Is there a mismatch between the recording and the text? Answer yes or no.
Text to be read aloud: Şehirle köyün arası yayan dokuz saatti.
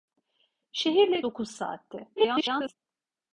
yes